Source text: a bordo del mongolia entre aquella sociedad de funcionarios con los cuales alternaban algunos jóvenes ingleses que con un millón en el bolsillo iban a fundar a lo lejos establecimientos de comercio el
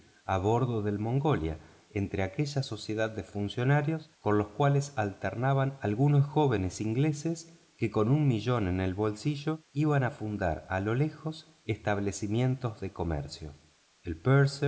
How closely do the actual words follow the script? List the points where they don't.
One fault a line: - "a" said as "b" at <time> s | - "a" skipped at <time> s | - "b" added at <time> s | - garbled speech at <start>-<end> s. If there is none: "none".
none